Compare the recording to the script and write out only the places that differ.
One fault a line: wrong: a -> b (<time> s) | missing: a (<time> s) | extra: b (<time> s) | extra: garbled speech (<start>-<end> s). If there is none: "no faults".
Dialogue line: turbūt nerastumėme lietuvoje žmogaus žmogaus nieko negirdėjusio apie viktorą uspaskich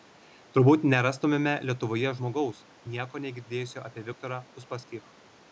missing: žmogaus (2.6 s)